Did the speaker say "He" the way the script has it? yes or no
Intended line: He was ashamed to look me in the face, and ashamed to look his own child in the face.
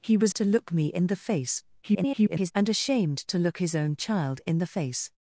yes